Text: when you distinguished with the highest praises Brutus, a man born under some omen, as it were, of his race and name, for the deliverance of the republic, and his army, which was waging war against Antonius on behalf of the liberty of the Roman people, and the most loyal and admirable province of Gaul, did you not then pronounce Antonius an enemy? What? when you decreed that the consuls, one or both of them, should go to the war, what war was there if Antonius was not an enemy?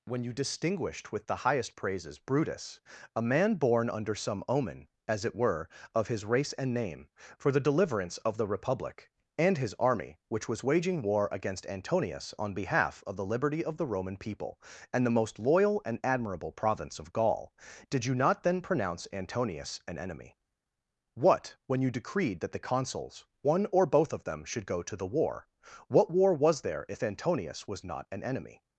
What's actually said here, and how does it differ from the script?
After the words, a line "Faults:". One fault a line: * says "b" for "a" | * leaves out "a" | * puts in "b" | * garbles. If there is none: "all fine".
when you distinguished with the highest praises Brutus, a man born under some omen, as it were, of his race and name, for the deliverance of the republic, and his army, which was waging war against Antonius on behalf of the liberty of the Roman people, and the most loyal and admirable province of Gaul, did you not then pronounce Antonius an enemy? What? when you decreed that the consuls, one or both of them, should go to the war, what war was there if Antonius was not an enemy?
Faults:
all fine